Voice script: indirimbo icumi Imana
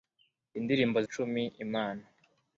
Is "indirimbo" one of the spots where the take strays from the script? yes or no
no